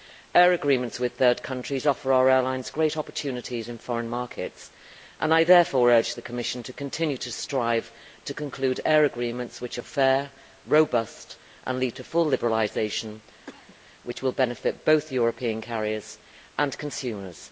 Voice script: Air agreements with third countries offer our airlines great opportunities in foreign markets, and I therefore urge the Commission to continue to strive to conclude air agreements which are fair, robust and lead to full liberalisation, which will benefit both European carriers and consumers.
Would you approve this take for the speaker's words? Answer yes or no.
yes